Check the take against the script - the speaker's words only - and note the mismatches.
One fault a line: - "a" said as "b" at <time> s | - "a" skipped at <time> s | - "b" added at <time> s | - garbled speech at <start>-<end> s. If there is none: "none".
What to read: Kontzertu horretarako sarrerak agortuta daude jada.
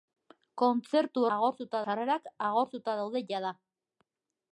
- "horretarako" said as "agortuta" at 1.4 s